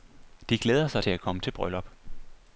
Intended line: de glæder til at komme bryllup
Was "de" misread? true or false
false